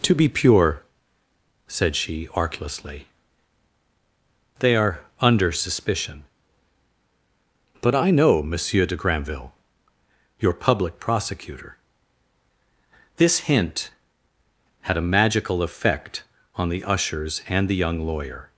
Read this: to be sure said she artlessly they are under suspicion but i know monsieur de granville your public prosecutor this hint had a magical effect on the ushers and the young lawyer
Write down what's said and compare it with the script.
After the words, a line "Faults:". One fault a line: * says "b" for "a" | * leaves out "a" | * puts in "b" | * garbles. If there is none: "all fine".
to be pure said she artlessly they are under suspicion but i know monsieur de granville your public prosecutor this hint had a magical effect on the ushers and the young lawyer
Faults:
* says "pure" for "sure"